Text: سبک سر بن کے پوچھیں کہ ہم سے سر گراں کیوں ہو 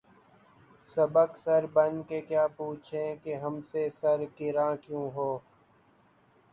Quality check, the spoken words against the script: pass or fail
fail